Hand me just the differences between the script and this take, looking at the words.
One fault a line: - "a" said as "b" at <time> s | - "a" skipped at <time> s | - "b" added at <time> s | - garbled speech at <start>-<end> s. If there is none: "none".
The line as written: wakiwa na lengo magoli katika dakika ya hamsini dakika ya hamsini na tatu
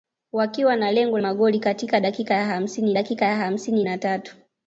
none